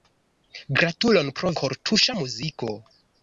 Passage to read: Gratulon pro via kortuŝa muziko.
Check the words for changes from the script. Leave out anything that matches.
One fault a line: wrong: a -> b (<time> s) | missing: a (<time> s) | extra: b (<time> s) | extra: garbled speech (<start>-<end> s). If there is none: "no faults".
missing: via (1.5 s)